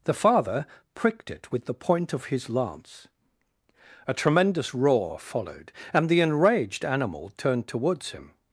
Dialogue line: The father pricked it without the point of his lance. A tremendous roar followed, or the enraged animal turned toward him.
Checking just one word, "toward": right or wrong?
wrong